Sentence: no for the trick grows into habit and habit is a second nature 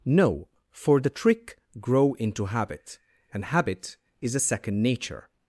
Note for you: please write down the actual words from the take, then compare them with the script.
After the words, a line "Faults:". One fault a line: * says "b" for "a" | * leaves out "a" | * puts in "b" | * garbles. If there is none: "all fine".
no for the trick grow into habit and habit is a second nature
Faults:
* says "grow" for "grows"